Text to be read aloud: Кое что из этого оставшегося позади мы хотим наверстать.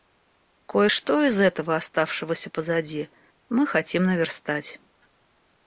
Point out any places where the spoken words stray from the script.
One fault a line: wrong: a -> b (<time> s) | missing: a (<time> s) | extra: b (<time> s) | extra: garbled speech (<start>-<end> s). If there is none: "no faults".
no faults